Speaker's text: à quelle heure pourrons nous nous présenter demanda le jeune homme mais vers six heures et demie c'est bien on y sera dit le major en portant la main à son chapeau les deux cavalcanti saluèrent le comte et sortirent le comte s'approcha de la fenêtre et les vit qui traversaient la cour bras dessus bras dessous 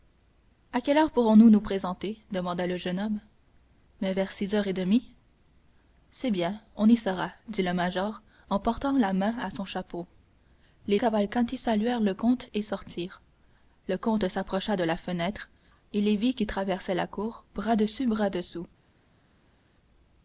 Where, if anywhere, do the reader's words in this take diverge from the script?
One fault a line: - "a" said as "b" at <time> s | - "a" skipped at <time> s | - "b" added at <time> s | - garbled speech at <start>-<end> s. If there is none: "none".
- "deux" skipped at 11.0 s